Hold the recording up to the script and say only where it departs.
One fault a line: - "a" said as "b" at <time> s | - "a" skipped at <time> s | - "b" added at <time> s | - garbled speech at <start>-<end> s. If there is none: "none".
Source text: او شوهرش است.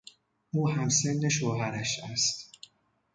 - "همسن" added at 0.7 s